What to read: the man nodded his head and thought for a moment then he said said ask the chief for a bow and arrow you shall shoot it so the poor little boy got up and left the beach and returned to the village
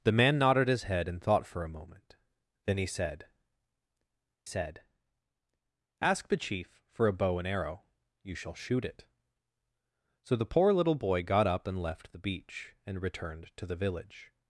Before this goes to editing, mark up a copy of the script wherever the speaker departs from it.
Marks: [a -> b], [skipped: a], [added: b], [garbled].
the man nodded his head and thought for a moment then he said said ask the chief for a bow and arrow you shall shoot it so the poor little boy got up and left the beach and returned to the village